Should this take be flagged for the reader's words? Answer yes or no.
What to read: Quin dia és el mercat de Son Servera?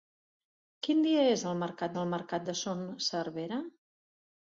yes